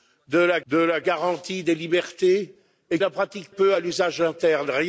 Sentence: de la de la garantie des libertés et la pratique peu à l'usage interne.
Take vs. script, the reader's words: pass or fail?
pass